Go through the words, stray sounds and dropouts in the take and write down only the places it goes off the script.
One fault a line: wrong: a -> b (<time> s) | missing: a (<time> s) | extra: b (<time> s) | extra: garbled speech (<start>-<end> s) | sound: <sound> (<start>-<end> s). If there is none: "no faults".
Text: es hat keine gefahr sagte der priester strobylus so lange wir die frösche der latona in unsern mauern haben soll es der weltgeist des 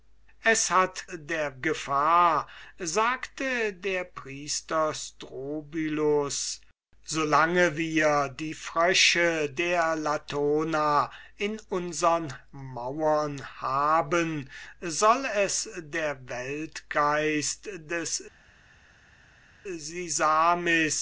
wrong: keine -> der (1.1 s)